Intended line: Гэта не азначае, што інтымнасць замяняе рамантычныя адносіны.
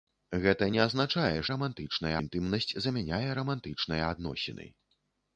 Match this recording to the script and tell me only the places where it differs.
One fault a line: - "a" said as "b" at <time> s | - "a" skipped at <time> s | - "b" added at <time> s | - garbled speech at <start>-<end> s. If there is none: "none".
- "што" said as "рамантычныя" at 1.5 s